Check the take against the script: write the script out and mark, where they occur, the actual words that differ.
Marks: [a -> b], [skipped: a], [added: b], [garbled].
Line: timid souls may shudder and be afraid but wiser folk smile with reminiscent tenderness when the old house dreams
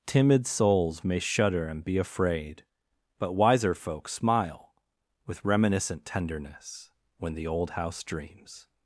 timid souls may shudder and be afraid but wiser folk smile with reminiscent tenderness when the old house dreams